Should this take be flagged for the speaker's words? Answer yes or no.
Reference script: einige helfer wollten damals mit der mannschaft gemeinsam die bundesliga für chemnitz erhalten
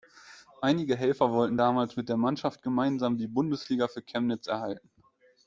no